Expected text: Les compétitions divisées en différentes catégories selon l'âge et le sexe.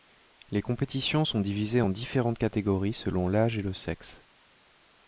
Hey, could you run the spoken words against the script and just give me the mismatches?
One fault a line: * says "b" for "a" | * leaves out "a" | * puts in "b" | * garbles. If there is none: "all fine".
* puts in "sont"